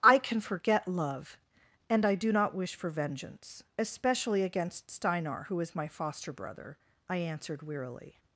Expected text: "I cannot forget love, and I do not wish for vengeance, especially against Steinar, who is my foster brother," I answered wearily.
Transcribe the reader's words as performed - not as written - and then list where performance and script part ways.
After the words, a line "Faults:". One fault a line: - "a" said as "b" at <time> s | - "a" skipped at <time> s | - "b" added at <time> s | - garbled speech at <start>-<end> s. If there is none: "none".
"I can forget love, and I do not wish for vengeance, especially against Steinar, who is my foster brother," I answered wearily.
Faults:
- "cannot" said as "can" at 0.2 s